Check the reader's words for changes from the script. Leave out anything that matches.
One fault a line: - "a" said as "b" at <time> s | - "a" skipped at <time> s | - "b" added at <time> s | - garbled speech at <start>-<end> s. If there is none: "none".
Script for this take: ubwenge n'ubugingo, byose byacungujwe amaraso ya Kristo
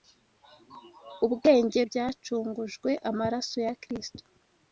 - "n'ubugingo byose" skipped at 1.8 s